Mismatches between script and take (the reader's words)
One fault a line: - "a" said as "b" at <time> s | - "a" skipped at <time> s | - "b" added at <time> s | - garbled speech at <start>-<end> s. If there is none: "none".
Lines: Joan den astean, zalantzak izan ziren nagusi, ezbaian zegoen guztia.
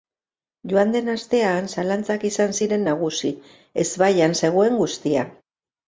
none